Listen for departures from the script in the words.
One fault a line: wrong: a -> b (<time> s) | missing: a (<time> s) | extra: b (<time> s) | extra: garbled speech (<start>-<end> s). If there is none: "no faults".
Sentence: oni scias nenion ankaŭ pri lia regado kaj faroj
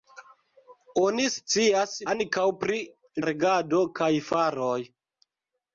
missing: nenion (1.9 s)
missing: lia (2.8 s)